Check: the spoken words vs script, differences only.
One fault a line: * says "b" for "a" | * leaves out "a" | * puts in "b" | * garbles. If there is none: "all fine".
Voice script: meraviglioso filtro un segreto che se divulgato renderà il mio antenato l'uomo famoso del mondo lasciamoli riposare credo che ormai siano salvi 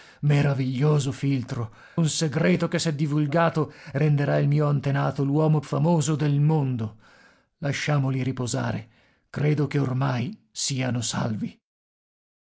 all fine